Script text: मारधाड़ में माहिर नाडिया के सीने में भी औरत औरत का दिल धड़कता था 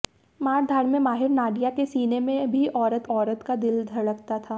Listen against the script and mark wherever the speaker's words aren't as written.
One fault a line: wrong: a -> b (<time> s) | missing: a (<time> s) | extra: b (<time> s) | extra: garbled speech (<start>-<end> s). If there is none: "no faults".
no faults